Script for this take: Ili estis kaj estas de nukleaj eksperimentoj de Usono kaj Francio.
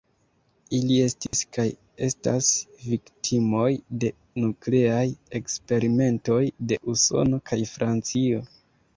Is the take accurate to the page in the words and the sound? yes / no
no